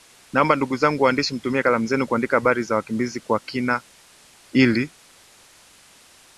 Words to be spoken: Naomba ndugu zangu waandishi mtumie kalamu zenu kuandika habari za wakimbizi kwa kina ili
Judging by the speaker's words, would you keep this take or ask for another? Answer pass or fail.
pass